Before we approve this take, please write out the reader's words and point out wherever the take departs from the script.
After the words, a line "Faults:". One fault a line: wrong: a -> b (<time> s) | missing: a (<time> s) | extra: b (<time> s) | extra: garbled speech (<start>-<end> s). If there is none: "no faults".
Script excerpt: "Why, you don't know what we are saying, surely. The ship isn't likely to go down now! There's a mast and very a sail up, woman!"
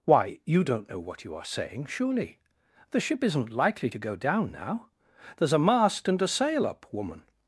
"Why, you don't know what you are saying, surely. The ship isn't likely to go down now! There's a mast and a sail up, woman!"
Faults:
wrong: we -> you (1.2 s)
missing: very (6.2 s)